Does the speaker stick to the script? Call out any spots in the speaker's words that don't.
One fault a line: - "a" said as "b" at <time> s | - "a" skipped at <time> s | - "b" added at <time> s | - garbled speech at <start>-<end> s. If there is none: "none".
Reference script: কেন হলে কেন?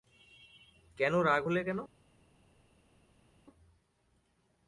- "রাগ" added at 1.2 s